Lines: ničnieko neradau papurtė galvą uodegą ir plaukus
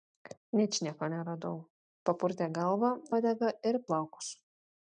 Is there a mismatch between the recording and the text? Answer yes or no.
no